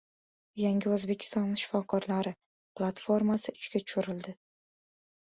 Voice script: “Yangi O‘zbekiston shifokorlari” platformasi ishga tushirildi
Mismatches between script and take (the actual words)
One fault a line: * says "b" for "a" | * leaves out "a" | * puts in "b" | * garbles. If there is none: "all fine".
all fine